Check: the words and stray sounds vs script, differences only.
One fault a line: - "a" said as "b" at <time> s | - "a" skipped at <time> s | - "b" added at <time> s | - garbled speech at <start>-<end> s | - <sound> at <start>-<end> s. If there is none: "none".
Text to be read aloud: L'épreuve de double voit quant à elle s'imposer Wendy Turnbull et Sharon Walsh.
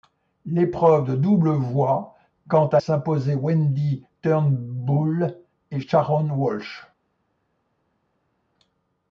- "elle" skipped at 2.8 s